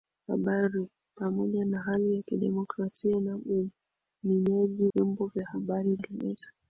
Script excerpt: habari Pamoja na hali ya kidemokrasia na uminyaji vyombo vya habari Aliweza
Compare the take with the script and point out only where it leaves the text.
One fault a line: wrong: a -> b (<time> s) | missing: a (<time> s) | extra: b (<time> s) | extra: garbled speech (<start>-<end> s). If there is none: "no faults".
no faults